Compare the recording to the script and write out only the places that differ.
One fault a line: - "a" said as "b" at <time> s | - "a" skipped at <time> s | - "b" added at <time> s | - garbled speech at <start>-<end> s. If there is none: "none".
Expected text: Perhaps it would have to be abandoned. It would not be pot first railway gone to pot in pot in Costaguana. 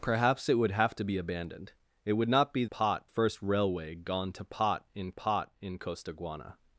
none